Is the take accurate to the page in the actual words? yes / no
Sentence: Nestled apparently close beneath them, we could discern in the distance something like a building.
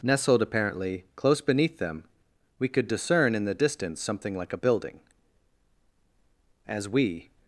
no